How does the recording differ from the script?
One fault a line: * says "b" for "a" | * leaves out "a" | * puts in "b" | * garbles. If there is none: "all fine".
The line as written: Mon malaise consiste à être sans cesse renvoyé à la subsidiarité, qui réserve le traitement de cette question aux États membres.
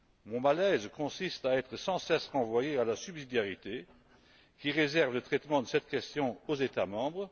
all fine